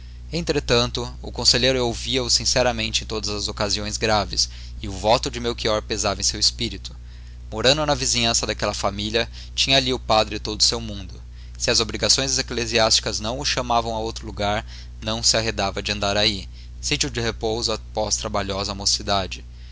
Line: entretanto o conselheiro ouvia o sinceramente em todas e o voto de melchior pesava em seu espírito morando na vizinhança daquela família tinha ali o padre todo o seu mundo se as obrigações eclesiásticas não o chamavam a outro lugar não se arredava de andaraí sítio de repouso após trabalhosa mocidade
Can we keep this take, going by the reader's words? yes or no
no